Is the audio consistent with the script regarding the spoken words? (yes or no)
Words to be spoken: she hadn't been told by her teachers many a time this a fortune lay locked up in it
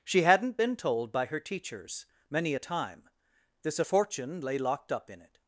yes